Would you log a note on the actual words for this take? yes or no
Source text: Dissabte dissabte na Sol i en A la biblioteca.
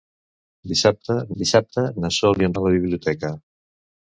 no